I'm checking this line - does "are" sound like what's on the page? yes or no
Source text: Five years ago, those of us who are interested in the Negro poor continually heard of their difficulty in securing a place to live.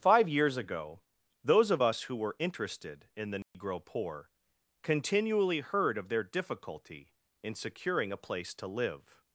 no